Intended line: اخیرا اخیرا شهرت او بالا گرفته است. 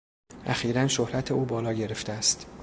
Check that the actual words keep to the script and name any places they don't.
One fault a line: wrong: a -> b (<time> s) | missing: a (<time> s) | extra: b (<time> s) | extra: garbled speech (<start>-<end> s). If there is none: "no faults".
missing: اخیرا (0.9 s)